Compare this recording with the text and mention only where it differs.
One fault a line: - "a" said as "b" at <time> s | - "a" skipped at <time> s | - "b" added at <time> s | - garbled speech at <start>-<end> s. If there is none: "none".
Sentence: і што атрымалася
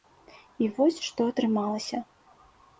- "вось" added at 0.8 s